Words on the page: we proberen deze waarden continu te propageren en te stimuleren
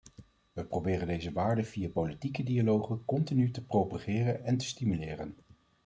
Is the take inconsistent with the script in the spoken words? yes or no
yes